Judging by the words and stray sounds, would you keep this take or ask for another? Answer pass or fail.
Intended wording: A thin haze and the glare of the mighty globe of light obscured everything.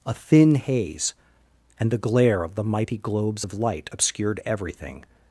fail